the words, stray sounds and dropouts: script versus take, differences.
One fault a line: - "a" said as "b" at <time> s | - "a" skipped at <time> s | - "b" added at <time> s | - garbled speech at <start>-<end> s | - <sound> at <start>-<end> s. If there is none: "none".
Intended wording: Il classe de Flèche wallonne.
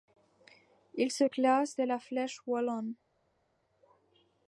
- "se" added at 1.1 s
- "la" added at 1.8 s